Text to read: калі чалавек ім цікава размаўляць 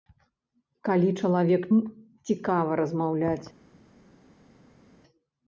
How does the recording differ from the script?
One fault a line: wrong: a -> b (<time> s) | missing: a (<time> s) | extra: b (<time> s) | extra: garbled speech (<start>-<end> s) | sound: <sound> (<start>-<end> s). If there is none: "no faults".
no faults